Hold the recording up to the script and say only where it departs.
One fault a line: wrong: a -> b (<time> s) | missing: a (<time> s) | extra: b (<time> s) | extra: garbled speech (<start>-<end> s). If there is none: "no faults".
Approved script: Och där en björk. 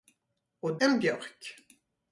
missing: där (0.8 s)